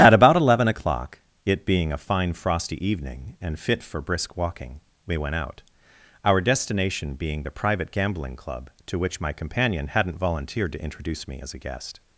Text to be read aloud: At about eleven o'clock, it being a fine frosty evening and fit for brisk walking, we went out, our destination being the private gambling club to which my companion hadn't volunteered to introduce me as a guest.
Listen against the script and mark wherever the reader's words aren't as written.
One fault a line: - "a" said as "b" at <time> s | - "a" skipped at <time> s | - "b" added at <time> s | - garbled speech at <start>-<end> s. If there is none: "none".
none